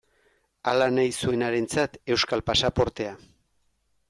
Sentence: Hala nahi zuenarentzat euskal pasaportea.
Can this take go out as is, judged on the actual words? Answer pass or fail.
pass